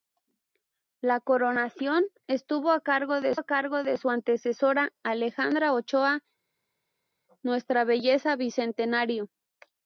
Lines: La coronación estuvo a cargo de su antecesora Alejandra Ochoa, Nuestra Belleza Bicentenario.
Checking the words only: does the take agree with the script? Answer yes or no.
no